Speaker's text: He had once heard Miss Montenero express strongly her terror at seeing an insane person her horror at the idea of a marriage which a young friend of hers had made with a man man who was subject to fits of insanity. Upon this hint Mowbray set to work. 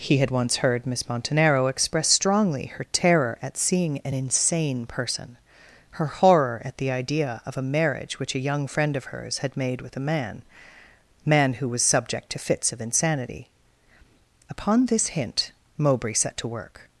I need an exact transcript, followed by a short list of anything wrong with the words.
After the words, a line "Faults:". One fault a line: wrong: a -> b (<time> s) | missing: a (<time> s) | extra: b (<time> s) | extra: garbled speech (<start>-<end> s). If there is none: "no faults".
He had once heard Miss Montenero express strongly her terror at seeing an insane person her horror at the idea of a marriage which a young friend of hers had made with a man man who was subject to fits of insanity. Upon this hint Mowbray set to work.
Faults:
no faults